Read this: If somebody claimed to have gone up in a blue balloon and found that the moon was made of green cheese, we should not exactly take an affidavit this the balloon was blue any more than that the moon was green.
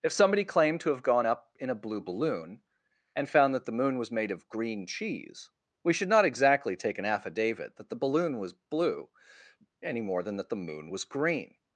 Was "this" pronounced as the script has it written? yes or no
no